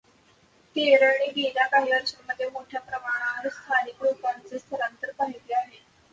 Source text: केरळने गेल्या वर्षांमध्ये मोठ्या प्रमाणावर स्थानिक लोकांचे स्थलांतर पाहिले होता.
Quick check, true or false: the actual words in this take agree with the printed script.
false